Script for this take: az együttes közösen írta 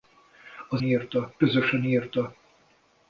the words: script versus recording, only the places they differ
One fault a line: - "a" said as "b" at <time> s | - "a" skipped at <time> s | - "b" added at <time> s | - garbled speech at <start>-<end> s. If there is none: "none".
- "együttes" said as "írta" at 0.8 s